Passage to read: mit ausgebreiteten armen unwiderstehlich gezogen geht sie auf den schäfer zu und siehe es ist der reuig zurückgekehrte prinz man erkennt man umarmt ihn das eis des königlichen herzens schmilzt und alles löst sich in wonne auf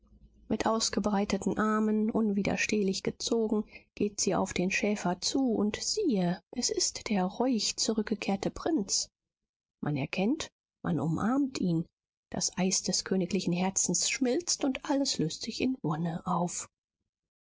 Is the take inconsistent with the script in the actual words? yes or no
no